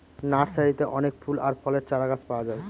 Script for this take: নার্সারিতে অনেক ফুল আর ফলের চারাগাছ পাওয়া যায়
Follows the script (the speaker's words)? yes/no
yes